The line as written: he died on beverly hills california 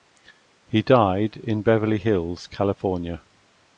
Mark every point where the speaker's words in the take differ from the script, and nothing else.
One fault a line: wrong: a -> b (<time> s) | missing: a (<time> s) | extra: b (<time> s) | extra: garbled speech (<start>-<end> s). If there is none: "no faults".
wrong: on -> in (1.4 s)